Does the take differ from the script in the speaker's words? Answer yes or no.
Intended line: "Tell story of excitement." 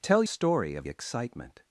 no